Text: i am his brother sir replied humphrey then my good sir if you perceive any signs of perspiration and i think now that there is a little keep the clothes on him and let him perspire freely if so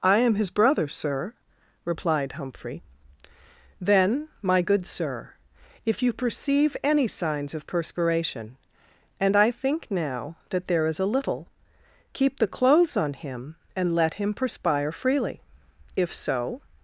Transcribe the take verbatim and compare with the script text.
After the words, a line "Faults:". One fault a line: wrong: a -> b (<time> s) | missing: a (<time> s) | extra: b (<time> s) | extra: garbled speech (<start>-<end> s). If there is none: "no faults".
i am his brother sir replied humphrey then my good sir if you perceive any signs of perspiration and i think now that there is a little keep the clothes on him and let him perspire freely if so
Faults:
no faults